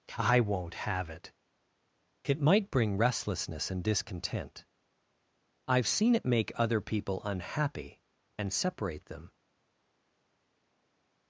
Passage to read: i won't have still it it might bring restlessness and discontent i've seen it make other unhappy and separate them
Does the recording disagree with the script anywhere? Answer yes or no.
yes